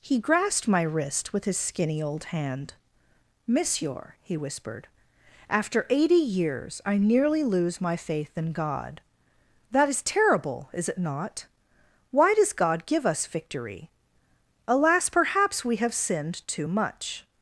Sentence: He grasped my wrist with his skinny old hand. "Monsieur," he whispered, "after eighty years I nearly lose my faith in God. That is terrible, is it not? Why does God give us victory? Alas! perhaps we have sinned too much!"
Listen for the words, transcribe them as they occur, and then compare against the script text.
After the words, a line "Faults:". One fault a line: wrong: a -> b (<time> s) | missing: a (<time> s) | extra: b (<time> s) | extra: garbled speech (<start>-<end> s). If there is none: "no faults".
He grasped my wrist with his skinny old hand. "Monsieur," he whispered, "after eighty years I nearly lose my faith in God. That is terrible, is it not? Why does God give us victory? Alas! perhaps we have sinned too much!"
Faults:
no faults